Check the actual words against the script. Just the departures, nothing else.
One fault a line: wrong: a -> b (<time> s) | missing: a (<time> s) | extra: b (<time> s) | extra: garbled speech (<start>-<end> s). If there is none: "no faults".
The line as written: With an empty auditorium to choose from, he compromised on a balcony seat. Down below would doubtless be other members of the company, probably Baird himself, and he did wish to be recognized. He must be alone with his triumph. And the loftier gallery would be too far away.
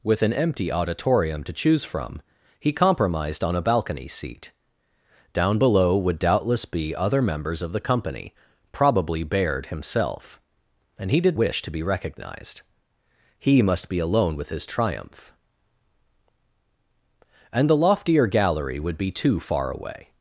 no faults